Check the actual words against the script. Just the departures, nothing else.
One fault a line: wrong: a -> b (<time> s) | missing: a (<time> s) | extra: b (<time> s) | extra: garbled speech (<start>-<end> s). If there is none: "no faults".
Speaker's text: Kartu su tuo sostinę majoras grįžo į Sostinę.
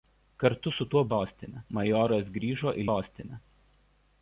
no faults